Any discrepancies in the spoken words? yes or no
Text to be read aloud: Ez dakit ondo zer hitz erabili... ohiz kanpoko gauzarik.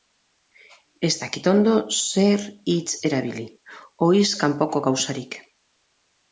no